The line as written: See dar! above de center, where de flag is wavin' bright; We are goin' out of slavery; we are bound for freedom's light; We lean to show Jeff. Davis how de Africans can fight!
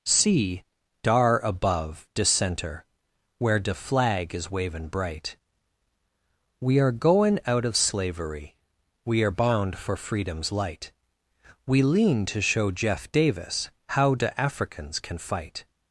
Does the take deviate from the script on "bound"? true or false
false